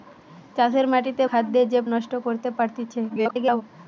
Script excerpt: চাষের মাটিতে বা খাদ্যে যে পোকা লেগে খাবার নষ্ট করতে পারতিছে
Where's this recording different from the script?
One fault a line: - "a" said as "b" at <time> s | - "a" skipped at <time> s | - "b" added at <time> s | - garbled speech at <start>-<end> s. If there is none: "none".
- "বা" skipped at 1.2 s
- "পোকা লেগে খাবার" skipped at 1.8 s
- garbled speech at 3.1-3.6 s